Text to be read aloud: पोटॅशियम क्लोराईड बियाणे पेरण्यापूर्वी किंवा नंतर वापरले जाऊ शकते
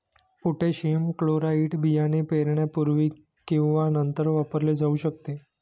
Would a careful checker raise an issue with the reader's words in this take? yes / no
no